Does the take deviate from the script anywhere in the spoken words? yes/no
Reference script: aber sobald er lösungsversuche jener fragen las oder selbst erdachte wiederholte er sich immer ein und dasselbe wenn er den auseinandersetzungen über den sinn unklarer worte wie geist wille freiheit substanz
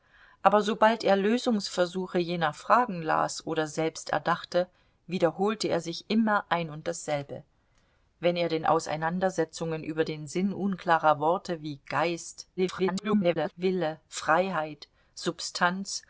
yes